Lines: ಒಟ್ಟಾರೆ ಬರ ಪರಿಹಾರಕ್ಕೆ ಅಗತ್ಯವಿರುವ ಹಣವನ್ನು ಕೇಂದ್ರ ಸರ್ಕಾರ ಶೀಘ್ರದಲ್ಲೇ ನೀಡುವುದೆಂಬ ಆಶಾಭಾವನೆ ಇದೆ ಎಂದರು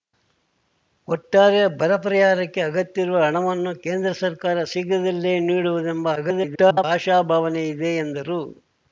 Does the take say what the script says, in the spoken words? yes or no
no